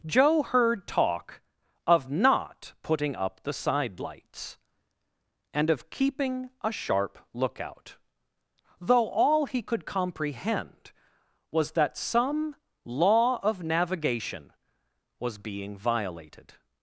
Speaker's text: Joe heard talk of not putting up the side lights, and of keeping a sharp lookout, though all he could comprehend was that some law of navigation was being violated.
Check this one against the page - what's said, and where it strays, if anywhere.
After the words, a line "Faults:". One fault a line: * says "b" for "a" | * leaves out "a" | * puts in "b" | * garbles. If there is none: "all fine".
Joe heard talk of not putting up the side lights, and of keeping a sharp lookout, though all he could comprehend was that some law of navigation was being violated.
Faults:
all fine